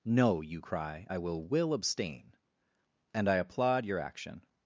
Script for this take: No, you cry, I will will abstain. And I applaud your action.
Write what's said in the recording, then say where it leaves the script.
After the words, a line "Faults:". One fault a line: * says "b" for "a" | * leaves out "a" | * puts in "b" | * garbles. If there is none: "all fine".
No, you cry, I will will abstain. And I applaud your action.
Faults:
all fine